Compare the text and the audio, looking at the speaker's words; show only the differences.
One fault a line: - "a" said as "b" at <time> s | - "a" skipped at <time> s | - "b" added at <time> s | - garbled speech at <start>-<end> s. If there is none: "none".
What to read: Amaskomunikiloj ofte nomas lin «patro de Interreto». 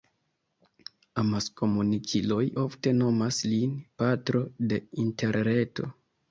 none